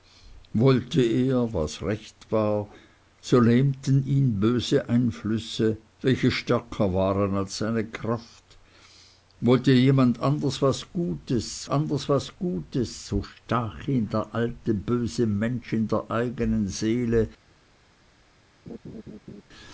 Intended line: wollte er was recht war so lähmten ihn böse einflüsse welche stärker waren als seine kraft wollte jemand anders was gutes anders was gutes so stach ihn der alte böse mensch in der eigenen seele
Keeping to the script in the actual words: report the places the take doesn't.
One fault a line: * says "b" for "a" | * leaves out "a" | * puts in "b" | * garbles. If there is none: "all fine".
all fine